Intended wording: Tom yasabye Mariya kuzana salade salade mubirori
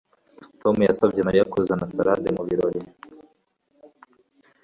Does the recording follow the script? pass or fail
fail